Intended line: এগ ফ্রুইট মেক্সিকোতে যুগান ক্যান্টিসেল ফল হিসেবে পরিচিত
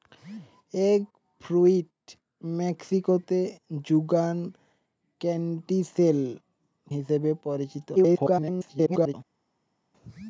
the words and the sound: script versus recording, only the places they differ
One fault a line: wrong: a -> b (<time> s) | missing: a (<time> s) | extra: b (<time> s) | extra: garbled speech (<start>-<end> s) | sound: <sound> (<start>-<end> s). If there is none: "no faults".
missing: ফল (6.2 s)
extra: garbled speech (7.9-9.1 s)